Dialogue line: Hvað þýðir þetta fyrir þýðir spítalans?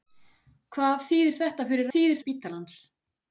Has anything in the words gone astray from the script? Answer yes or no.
no